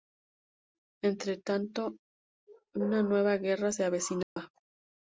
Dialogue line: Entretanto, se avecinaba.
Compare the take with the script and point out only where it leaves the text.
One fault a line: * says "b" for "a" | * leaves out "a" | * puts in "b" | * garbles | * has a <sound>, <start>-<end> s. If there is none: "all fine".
* puts in "una nueva guerra"
* has a dropout, 4.2-4.4 s